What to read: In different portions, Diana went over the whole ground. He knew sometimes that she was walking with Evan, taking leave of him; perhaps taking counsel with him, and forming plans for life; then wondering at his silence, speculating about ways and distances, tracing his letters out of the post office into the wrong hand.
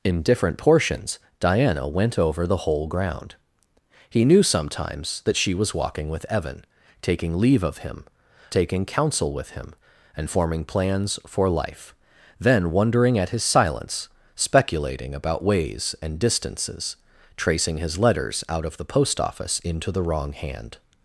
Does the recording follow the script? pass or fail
fail